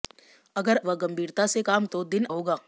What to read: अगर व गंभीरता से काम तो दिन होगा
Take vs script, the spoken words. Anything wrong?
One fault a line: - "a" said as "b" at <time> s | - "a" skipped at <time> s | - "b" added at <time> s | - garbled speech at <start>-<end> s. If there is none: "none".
none